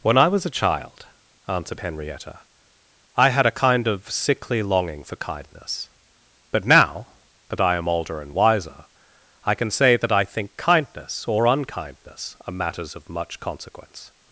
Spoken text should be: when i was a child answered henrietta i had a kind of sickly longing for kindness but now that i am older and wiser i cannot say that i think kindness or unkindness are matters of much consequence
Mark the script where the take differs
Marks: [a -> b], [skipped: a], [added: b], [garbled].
when i was a child answered henrietta i had a kind of sickly longing for kindness but now that i am older and wiser i [cannot -> can] say that i think kindness or unkindness are matters of much consequence